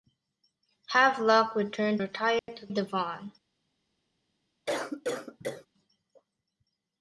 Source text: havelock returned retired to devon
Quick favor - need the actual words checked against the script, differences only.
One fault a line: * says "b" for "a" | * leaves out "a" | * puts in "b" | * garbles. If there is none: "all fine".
all fine